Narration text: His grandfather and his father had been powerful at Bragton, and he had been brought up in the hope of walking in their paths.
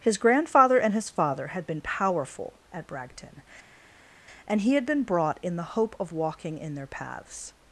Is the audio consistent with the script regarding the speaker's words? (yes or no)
no